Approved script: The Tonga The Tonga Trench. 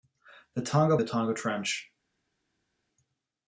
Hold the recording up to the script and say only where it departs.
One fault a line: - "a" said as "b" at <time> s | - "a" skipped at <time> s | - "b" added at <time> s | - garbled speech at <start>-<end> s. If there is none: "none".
none